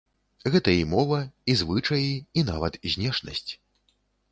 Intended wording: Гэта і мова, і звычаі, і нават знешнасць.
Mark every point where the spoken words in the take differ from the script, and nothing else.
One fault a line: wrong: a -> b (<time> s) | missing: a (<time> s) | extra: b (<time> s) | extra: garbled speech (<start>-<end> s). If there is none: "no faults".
no faults